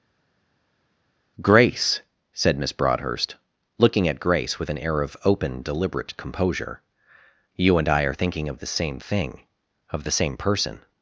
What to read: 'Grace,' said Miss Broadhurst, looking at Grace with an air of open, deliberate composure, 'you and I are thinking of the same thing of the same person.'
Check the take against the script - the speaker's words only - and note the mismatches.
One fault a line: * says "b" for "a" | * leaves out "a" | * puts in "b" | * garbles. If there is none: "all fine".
all fine